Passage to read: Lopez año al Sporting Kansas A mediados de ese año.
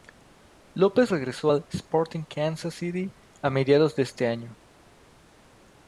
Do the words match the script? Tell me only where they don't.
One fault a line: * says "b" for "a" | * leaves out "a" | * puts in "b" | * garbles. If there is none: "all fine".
* says "regresó" for "año"
* puts in "City"